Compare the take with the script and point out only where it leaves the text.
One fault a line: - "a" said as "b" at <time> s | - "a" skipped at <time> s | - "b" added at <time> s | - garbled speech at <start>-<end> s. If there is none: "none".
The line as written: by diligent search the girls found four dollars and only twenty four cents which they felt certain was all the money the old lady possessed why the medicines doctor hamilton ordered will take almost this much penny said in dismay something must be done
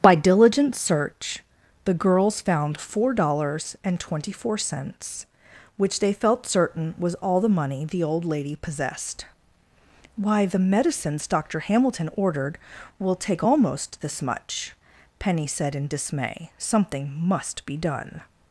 - "only" skipped at 4.0 s